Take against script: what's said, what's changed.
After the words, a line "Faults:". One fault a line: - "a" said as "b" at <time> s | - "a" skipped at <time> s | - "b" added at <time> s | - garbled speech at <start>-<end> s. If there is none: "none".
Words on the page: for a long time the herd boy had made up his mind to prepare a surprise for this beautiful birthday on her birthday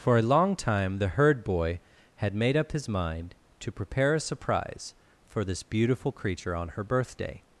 for a long time the herd boy had made up his mind to prepare a surprise for this beautiful creature on her birthday
Faults:
- "birthday" said as "creature" at 6.1 s